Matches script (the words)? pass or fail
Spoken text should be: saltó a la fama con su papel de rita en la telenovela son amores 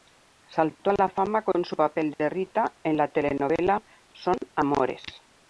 pass